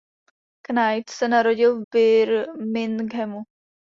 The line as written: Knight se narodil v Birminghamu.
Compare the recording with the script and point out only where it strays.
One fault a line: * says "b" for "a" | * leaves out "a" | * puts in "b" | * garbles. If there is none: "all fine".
* leaves out "v"